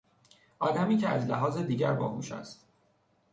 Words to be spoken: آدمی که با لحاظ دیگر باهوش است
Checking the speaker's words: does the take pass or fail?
fail